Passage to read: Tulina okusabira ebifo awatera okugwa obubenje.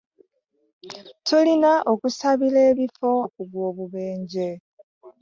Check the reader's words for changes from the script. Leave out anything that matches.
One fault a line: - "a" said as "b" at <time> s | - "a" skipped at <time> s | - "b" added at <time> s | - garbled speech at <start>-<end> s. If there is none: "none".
- "awatera" skipped at 3.1 s